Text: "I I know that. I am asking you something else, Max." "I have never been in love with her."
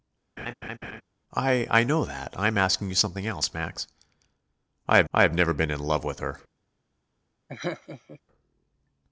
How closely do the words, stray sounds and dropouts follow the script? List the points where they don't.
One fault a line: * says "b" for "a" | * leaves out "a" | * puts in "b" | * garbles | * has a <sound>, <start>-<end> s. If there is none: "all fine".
* has a laugh, 0.4-1.0 s
* puts in "I have"
* has a laugh, 7.5-8.2 s